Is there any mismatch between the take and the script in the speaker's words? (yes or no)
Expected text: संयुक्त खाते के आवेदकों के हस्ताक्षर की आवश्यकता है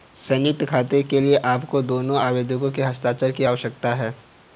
yes